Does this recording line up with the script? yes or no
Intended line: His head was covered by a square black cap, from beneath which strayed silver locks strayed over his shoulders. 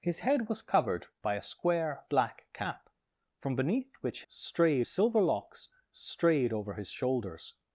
yes